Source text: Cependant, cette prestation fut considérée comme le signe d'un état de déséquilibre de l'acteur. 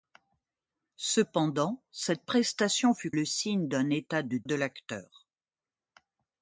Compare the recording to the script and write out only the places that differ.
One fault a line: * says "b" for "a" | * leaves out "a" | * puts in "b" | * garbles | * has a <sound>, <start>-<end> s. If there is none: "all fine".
* leaves out "considérée comme"
* leaves out "déséquilibre"